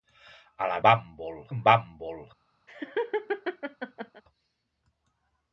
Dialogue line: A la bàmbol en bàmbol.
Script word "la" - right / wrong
right